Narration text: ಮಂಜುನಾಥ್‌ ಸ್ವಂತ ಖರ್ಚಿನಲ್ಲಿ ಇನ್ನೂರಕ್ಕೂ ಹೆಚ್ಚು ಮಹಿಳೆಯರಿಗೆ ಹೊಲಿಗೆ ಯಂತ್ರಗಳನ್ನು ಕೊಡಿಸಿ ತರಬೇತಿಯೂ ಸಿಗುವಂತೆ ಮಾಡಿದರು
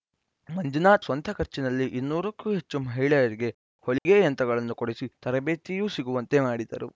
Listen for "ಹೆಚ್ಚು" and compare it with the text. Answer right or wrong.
right